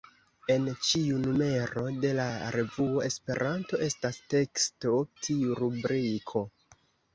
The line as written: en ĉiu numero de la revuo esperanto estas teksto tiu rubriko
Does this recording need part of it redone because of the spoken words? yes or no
no